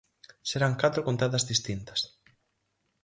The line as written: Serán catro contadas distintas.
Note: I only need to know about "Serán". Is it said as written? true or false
true